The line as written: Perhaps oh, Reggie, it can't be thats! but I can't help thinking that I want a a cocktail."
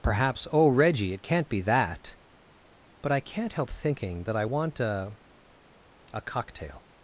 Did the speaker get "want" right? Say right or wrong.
right